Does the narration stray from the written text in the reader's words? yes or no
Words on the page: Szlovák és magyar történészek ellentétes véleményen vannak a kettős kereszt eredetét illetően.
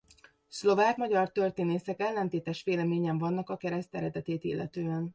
yes